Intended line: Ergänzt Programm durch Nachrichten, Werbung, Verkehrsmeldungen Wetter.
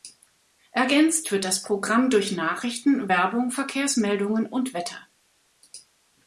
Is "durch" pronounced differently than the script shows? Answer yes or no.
no